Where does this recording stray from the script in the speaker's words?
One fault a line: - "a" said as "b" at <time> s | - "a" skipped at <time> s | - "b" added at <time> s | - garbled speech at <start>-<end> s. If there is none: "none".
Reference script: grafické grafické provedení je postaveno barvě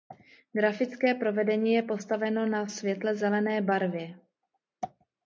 - "grafické" skipped at 1.1 s
- "na světle zelené" added at 2.5 s